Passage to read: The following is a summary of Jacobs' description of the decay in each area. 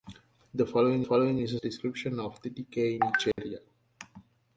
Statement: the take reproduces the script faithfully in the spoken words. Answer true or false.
false